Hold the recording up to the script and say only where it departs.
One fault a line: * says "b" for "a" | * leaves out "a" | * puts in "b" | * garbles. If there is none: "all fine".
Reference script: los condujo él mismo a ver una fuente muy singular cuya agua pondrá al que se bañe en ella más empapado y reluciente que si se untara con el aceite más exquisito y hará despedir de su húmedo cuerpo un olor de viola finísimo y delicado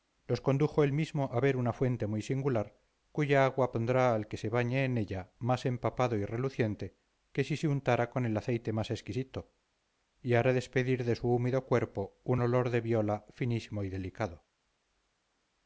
all fine